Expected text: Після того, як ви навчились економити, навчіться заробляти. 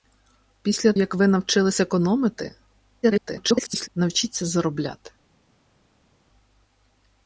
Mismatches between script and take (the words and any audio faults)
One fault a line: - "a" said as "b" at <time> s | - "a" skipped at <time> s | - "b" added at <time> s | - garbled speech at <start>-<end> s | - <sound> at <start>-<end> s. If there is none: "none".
- "того" skipped at 0.9 s
- garbled speech at 3.0-3.9 s